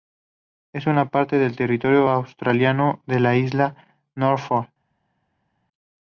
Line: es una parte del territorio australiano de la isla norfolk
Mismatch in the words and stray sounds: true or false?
false